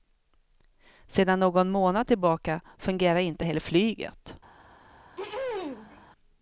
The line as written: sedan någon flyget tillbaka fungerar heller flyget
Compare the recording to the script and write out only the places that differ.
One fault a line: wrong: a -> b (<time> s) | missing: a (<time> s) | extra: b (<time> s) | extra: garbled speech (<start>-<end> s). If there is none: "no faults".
wrong: flyget -> månad (1.7 s)
extra: inte (3.2 s)